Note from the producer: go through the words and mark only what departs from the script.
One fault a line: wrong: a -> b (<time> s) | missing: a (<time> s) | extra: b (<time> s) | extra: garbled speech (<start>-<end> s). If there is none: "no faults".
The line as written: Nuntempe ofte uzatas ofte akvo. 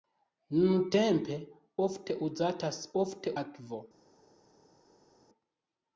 no faults